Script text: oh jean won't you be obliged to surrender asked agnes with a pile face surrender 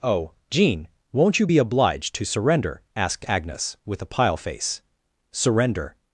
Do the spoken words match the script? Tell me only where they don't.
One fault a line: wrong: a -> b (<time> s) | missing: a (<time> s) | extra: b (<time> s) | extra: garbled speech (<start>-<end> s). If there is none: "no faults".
no faults